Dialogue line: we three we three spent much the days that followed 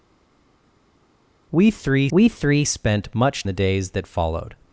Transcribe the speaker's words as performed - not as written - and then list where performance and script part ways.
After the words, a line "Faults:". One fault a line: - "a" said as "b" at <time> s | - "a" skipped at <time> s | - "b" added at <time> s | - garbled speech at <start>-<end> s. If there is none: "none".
we three we three spent much the days that followed
Faults:
none